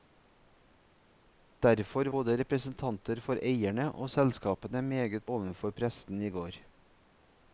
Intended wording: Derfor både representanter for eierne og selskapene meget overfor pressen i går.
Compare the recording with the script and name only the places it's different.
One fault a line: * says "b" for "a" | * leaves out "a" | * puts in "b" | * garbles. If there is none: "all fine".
all fine